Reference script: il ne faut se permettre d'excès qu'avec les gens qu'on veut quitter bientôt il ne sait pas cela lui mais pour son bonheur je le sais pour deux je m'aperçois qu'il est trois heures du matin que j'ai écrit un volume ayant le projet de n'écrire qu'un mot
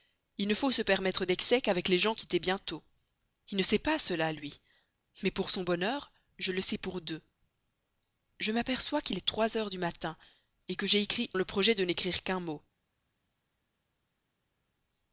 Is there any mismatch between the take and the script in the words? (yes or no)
yes